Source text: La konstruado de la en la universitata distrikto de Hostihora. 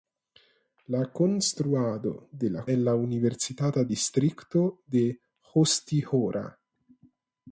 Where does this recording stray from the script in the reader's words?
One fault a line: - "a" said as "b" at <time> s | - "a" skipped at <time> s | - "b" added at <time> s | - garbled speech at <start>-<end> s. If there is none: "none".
none